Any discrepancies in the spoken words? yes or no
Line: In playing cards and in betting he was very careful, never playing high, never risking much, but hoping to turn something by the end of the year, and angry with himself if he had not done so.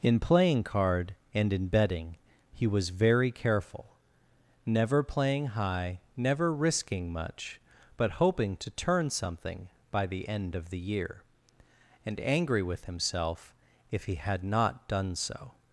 yes